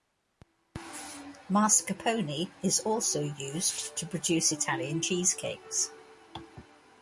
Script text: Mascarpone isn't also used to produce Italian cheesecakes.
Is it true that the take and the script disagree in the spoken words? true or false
true